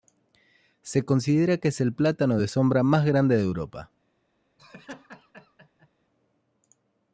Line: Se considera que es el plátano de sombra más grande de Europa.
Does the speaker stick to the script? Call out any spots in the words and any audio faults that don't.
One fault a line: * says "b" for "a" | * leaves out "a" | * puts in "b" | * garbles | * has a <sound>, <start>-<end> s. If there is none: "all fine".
* has a laugh, 4.6-5.9 s